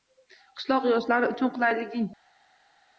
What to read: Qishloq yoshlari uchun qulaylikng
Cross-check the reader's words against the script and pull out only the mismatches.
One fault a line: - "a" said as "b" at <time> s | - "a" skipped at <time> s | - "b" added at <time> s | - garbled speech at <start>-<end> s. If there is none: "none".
none